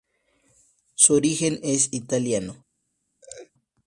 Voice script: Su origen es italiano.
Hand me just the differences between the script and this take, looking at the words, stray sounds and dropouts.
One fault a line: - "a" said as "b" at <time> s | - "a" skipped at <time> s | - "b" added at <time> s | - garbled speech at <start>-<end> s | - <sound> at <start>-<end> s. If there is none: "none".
- laugh at 3.2-3.5 s